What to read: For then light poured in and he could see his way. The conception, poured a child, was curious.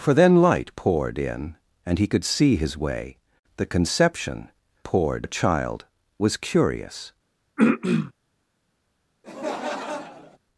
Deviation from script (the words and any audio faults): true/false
true